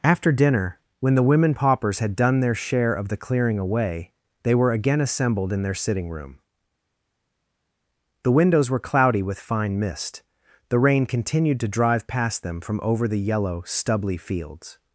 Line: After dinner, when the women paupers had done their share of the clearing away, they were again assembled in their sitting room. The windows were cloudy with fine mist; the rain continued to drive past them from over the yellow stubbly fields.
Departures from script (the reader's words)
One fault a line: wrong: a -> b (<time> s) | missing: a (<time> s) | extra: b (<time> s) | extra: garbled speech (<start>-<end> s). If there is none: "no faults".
no faults